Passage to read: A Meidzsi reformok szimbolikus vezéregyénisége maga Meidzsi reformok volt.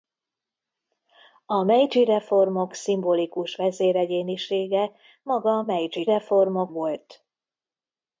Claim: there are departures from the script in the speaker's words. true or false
false